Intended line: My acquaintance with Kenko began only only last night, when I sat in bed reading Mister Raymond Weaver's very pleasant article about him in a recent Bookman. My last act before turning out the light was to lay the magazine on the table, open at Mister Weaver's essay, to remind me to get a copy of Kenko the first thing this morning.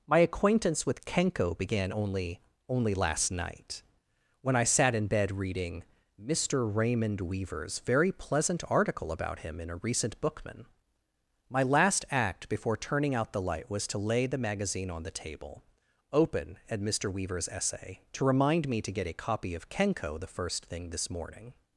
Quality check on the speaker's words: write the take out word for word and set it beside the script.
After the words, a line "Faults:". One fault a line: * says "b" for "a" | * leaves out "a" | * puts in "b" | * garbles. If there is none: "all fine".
My acquaintance with Kenko began only only last night, when I sat in bed reading Mister Raymond Weaver's very pleasant article about him in a recent Bookman. My last act before turning out the light was to lay the magazine on the table, open at Mister Weaver's essay, to remind me to get a copy of Kenko the first thing this morning.
Faults:
all fine